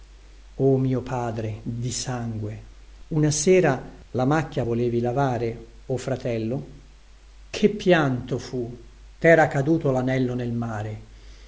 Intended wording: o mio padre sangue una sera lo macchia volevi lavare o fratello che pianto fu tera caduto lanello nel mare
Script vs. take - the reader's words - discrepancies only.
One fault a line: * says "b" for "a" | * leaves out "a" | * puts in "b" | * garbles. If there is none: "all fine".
* puts in "di"
* says "la" for "lo"